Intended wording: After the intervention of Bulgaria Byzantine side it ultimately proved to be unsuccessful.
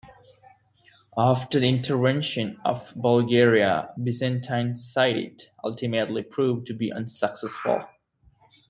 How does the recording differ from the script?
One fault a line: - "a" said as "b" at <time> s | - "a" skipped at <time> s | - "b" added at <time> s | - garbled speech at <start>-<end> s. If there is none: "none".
none